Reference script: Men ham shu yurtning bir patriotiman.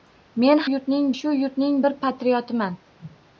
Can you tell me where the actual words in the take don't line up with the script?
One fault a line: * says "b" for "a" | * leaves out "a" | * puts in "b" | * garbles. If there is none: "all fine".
* says "yurtning" for "ham"